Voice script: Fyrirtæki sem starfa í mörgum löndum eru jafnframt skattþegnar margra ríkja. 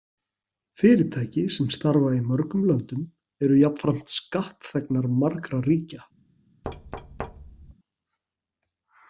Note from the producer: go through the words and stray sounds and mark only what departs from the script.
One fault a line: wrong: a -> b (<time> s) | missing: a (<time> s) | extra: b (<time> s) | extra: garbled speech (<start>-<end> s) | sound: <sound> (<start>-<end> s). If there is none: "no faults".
sound: thud (6.6-7.7 s)